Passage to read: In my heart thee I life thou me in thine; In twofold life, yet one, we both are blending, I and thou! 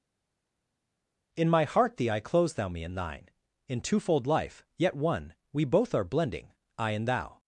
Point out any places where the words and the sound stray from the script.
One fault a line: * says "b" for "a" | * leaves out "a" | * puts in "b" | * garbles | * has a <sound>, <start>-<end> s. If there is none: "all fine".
* says "close" for "life"